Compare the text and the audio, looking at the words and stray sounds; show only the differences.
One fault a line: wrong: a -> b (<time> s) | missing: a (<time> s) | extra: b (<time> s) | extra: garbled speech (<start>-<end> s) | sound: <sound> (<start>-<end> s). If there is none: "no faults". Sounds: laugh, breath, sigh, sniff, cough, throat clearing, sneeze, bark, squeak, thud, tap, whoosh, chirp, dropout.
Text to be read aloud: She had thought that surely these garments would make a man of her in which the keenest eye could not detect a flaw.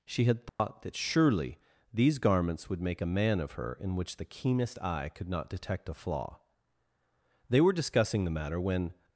sound: dropout (0.5-0.6 s)
extra: They were discussing the matter when (7.5 s)